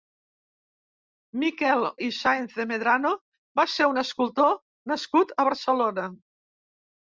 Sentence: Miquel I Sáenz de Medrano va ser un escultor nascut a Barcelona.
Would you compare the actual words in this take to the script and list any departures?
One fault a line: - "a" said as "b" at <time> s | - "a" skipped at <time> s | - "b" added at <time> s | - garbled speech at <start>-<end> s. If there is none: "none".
none